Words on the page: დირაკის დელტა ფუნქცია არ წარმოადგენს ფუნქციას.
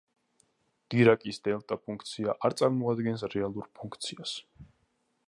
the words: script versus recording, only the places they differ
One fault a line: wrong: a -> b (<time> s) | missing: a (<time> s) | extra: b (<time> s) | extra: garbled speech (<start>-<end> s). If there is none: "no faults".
extra: რეალურ (3.4 s)